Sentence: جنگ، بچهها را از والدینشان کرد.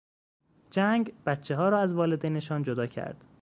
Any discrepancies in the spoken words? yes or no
yes